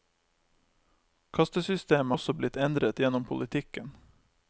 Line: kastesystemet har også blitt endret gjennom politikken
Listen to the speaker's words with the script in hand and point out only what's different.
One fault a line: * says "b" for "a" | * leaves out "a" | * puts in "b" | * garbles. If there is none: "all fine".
* leaves out "har"